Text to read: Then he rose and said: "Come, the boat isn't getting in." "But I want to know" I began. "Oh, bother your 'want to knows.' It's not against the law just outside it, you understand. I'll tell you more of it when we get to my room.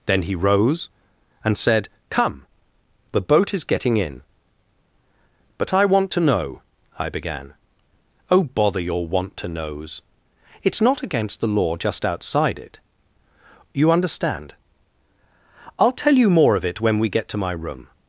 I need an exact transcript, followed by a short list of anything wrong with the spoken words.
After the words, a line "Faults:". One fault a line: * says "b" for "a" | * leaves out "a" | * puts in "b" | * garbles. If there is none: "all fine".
Then he rose and said: "Come, the boat is getting in." "But I want to know" I began. "Oh, bother your 'want to knows.' It's not against the law just outside it, you understand. I'll tell you more of it when we get to my room.
Faults:
* says "is" for "isn't"